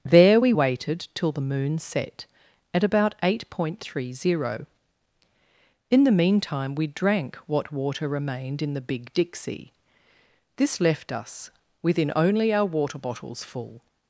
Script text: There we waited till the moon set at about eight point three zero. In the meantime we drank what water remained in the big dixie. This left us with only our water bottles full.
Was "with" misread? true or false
true